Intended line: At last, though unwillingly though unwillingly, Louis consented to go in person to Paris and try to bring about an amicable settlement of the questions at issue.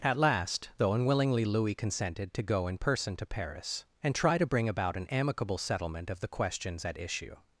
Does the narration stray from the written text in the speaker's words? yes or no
yes